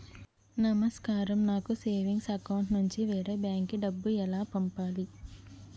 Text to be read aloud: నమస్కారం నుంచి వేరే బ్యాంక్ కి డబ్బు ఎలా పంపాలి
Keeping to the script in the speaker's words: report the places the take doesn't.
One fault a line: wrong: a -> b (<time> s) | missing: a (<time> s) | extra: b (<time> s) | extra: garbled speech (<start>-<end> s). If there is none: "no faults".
extra: నాకు సేవింగ్స్ అకౌంట్ (1.4 s)